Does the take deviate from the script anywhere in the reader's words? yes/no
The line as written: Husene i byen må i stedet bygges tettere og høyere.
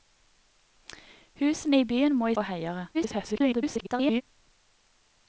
yes